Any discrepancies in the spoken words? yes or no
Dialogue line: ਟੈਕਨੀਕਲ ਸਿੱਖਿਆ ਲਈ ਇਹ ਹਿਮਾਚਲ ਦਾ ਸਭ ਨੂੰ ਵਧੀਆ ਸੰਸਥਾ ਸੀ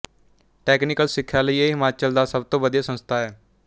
yes